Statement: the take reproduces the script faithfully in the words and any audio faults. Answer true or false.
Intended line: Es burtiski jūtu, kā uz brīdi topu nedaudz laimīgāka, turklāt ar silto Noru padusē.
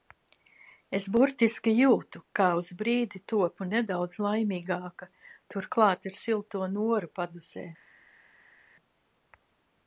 true